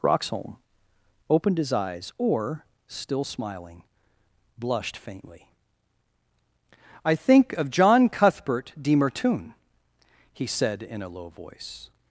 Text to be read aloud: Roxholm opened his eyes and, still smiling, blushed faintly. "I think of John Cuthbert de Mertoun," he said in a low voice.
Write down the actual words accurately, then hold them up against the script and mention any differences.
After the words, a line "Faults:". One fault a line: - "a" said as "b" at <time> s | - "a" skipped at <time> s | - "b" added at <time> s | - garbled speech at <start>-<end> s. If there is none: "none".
Roxholm opened his eyes or, still smiling, blushed faintly. "I think of John Cuthbert de Mertoun," he said in a low voice.
Faults:
- "and" said as "or" at 2.2 s